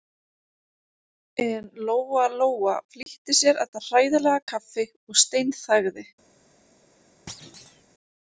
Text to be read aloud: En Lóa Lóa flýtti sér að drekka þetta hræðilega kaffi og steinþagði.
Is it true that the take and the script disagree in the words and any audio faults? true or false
true